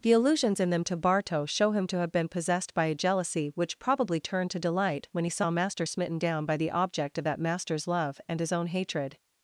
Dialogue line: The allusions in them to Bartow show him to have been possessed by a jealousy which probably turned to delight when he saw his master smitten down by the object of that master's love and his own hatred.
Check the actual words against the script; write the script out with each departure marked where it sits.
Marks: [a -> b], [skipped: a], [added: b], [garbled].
The allusions in them to Bartow show him to have been possessed by a jealousy which probably turned to delight when he saw [skipped: his] master smitten down by the object of that master's love and his own hatred.